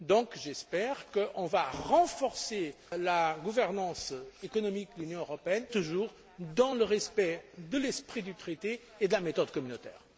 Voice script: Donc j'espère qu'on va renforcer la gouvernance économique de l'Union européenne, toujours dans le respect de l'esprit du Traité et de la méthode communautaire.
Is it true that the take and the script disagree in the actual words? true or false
false